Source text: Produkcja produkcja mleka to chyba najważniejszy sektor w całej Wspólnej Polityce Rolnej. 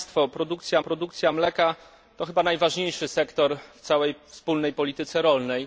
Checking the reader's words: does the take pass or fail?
pass